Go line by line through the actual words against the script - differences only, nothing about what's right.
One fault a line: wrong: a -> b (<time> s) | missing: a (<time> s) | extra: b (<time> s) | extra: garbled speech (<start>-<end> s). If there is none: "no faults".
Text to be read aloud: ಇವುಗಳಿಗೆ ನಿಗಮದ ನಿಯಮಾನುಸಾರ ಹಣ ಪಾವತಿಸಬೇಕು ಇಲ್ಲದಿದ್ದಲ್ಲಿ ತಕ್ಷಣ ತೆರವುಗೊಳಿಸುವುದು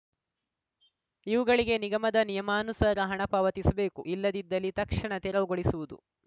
no faults